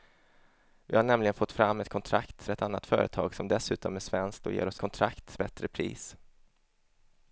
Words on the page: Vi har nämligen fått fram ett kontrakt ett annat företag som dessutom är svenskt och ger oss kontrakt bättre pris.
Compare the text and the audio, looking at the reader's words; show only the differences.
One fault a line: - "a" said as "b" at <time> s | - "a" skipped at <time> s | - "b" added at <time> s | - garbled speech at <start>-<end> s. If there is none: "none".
none